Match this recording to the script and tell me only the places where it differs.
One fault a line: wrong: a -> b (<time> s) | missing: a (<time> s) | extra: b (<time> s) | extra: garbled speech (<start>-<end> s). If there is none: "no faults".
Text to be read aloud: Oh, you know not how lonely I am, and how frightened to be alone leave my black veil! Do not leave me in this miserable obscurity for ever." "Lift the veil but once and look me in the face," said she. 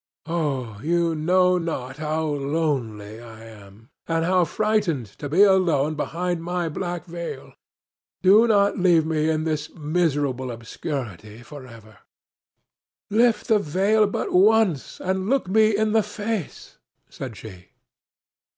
wrong: leave -> behind (5.9 s)